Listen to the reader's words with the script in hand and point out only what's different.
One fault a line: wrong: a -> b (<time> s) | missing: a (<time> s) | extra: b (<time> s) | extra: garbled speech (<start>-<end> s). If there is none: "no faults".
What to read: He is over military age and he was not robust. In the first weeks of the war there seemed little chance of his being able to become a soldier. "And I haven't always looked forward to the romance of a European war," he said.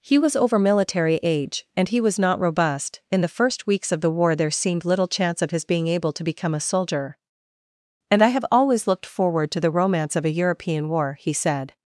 wrong: is -> was (0.2 s)
wrong: haven't -> have (8.3 s)